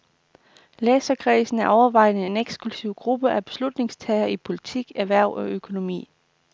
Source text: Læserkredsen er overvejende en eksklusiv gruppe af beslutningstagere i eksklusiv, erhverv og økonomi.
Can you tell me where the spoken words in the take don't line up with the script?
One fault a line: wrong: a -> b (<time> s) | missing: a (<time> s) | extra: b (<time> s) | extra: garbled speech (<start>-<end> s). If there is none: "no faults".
wrong: eksklusiv -> politik (4.4 s)